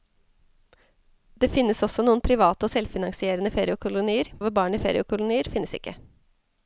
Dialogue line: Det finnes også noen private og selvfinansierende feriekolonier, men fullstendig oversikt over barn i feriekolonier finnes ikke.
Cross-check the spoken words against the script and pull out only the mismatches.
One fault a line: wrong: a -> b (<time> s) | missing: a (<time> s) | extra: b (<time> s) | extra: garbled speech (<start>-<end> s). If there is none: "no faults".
missing: men fullstendig oversikt (4.3 s)